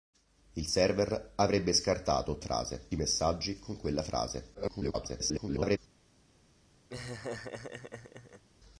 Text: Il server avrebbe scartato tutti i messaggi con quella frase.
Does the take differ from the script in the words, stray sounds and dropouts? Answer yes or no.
yes